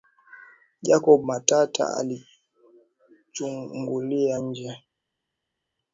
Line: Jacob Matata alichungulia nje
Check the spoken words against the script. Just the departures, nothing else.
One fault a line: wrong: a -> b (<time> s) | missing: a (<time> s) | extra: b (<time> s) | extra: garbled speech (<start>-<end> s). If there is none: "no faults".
no faults